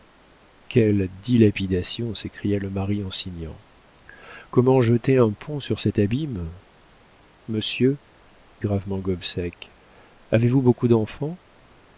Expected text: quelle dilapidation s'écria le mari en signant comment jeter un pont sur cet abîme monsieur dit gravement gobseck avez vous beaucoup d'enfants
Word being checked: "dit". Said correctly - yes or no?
no